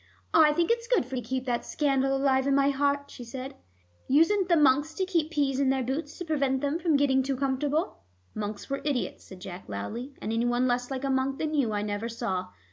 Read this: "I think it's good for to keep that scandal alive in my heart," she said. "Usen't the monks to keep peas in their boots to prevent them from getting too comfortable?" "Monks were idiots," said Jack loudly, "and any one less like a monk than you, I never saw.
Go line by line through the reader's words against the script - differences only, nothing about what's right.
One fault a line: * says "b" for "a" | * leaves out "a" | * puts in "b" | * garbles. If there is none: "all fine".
all fine